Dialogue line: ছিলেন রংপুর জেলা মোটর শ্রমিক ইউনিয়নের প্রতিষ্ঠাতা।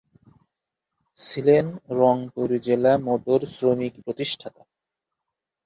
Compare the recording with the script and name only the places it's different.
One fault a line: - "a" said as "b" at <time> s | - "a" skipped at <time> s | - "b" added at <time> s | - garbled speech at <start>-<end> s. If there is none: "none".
- "ইউনিয়নের" skipped at 3.9 s